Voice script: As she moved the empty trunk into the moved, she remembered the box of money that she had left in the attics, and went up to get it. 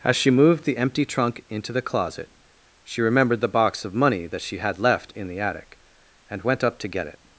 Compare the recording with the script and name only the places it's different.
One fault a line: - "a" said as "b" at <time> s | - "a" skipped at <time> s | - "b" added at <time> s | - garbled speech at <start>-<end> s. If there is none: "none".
- "moved" said as "closet" at 1.8 s
- "attics" said as "attic" at 5.4 s